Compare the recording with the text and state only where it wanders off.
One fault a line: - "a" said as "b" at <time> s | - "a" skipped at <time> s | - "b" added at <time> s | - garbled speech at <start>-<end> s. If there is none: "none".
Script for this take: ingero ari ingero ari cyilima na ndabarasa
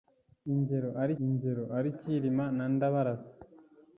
none